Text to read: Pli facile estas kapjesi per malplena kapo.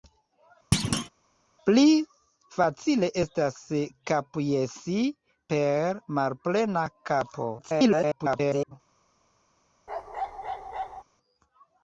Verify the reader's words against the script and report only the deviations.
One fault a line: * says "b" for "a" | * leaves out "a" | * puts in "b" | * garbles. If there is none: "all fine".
* garbles